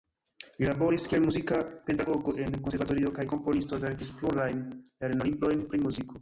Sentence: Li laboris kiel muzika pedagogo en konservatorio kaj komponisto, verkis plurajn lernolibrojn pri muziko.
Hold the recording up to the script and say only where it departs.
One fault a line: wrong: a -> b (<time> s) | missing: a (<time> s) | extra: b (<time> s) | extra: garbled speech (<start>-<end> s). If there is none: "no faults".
no faults